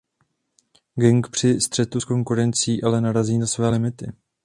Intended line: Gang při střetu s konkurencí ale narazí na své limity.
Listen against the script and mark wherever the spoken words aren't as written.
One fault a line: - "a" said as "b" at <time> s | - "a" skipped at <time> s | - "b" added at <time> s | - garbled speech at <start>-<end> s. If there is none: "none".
none